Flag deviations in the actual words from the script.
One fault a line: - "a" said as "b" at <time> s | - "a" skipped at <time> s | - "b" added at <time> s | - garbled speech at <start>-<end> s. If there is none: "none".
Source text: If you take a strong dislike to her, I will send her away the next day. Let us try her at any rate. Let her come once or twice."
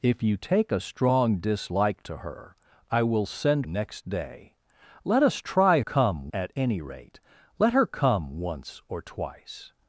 - "her away the" skipped at 3.7 s
- "her" said as "come" at 5.8 s